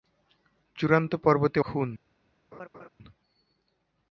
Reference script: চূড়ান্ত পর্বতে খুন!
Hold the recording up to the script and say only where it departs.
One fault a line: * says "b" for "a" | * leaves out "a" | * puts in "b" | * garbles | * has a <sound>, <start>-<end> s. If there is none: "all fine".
* has a laugh, 2.5-2.9 s